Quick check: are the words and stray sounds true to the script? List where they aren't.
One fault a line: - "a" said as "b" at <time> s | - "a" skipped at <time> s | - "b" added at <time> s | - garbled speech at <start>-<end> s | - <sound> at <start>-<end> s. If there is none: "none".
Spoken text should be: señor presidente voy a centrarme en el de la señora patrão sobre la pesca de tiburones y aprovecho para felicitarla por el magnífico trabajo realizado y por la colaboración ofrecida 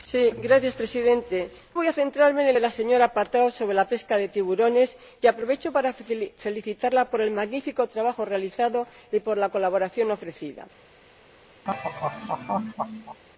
- laugh at 11.6-13.2 s